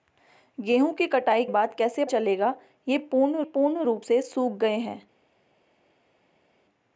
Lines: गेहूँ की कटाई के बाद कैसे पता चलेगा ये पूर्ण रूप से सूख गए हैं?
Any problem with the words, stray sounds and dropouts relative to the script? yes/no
yes